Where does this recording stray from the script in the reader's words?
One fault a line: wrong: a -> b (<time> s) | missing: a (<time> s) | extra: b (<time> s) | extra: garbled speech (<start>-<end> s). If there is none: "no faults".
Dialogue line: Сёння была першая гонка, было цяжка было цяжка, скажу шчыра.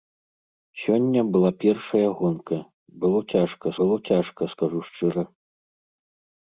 no faults